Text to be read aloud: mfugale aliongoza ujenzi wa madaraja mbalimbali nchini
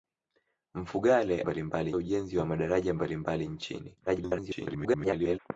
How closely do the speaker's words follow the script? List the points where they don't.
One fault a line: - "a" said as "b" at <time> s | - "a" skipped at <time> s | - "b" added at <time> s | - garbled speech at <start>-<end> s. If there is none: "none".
- "aliongoza" said as "mbalimbali" at 1.4 s
- garbled speech at 4.1-5.4 s